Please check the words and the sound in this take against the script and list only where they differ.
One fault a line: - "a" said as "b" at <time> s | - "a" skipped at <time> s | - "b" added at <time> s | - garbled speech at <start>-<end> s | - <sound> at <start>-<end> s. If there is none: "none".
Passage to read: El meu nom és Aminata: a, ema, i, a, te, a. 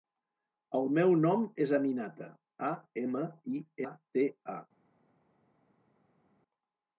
none